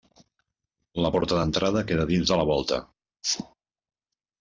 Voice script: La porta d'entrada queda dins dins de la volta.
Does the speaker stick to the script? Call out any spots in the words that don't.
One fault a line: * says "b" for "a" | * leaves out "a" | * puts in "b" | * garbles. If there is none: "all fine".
* leaves out "dins"